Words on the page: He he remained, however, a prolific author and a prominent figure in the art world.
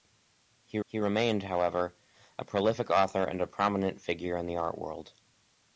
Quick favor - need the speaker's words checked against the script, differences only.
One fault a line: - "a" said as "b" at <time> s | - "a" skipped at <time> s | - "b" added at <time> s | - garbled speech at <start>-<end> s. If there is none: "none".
none